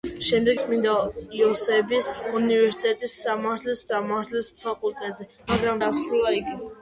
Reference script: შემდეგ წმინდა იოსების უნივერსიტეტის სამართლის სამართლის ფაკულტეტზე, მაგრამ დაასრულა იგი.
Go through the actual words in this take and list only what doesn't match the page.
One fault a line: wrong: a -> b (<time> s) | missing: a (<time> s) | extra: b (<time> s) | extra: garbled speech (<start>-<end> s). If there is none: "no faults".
no faults